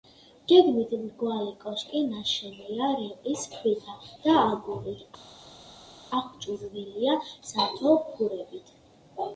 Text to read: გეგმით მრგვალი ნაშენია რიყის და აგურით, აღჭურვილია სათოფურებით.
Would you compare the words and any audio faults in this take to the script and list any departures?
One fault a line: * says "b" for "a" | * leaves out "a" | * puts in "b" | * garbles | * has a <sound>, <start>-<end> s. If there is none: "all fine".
* puts in "კოშკი"
* puts in "ქვითა"